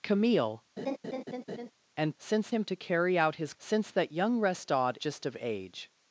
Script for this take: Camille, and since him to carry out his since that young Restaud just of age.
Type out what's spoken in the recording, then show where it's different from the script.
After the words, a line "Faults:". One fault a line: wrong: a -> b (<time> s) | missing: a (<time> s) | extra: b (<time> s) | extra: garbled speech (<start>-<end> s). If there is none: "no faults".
Camille, and since him to carry out his since that young Restaud just of age.
Faults:
no faults